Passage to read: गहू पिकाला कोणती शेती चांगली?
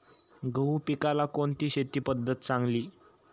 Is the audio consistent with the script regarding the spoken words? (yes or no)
no